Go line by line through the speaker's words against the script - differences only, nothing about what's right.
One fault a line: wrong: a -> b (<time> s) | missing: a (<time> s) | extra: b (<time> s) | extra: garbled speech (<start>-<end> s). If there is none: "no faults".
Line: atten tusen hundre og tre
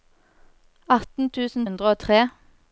no faults